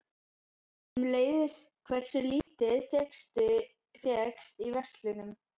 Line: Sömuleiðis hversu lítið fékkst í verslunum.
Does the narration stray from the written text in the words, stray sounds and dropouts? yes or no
yes